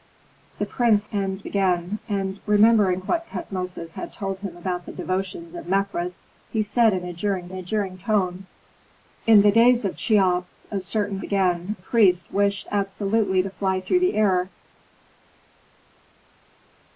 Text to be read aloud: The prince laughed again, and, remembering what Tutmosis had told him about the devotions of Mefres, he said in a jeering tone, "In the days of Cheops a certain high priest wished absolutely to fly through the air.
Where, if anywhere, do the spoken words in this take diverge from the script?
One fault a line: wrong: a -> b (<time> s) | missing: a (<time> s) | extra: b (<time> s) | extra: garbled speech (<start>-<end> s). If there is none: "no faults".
wrong: laughed -> and (1.1 s)
extra: a jeering (7.5 s)
wrong: high -> again (11.2 s)